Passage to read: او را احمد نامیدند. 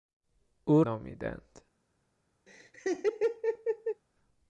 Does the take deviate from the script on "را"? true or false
true